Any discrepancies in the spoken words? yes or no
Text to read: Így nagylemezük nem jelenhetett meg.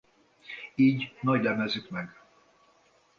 yes